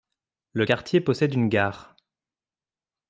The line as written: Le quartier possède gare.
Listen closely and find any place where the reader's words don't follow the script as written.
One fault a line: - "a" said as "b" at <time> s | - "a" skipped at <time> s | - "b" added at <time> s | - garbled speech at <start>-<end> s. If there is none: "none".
- "une" added at 1.3 s